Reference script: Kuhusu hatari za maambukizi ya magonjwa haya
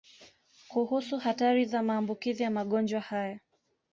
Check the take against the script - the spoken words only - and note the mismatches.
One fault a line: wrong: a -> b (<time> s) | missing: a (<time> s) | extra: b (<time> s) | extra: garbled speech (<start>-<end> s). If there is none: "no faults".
no faults